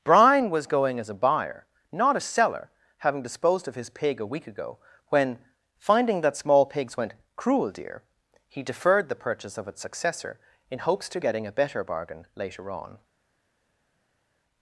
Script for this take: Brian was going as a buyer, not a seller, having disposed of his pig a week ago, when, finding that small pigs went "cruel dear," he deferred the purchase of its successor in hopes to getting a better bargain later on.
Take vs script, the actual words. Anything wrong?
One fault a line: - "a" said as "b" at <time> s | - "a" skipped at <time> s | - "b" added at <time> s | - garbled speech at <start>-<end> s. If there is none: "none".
none